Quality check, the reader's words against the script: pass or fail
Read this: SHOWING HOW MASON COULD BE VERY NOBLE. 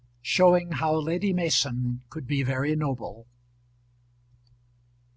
fail